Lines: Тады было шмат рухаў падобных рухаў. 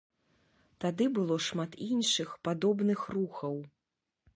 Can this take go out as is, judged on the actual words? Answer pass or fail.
fail